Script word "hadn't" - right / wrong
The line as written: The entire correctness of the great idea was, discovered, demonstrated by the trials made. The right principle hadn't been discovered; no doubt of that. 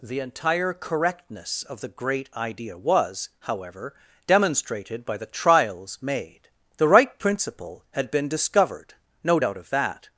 wrong